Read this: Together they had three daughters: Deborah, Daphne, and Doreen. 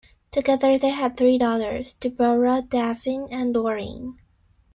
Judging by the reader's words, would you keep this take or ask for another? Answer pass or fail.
pass